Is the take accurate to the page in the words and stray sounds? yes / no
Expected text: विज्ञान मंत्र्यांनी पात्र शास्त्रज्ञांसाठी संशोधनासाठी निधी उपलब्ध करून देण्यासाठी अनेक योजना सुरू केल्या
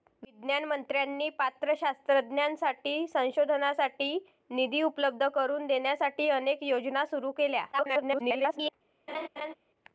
no